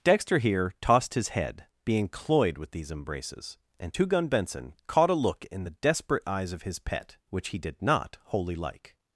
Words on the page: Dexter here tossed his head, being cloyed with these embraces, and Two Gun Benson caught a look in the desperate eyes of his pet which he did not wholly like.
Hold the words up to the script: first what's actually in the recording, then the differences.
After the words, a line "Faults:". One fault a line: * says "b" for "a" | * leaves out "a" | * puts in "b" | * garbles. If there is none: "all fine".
Dexter here tossed his head, being cloyed with these embraces, and Two Gun Benson caught a look in the desperate eyes of his pet which he did not wholly like.
Faults:
all fine